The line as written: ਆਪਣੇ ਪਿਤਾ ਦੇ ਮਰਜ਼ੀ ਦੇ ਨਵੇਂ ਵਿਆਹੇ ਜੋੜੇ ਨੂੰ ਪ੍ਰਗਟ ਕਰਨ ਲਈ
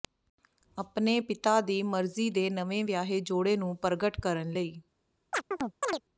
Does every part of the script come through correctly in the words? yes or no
no